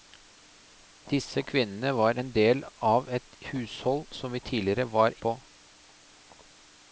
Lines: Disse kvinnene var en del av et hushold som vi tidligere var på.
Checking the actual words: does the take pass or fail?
pass